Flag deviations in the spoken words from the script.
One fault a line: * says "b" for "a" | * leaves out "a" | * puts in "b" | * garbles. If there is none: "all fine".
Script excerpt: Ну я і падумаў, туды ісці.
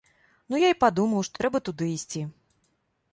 * puts in "што трэба"